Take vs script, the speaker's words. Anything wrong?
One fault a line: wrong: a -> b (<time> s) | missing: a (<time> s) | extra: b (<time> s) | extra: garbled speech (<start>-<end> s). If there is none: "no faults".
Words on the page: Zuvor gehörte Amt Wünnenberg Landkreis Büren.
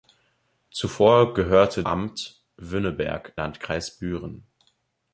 no faults